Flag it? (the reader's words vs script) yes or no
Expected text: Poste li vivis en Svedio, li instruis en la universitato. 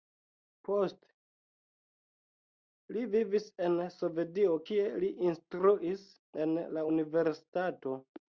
yes